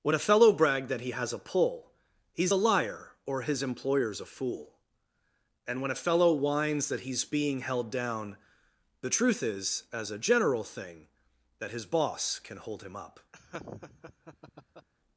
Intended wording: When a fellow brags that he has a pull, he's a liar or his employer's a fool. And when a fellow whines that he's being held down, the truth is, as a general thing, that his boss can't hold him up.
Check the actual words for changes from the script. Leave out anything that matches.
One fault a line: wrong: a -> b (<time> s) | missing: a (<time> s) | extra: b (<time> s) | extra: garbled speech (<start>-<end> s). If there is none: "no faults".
wrong: brags -> brag (0.5 s)
wrong: can't -> can (12.4 s)